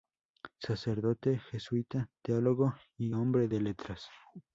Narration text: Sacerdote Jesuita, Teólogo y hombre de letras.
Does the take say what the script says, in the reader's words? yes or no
yes